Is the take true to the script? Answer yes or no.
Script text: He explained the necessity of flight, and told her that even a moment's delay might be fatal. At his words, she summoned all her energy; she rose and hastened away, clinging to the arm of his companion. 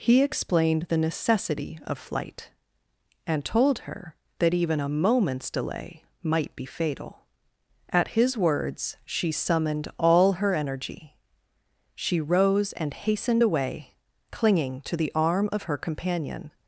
no